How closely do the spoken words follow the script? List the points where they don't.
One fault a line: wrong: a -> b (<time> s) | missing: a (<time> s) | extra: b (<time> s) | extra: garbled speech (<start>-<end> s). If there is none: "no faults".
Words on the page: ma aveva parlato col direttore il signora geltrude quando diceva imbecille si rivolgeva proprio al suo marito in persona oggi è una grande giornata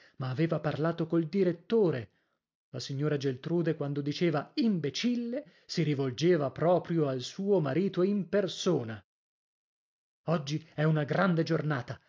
wrong: il -> la (2.7 s)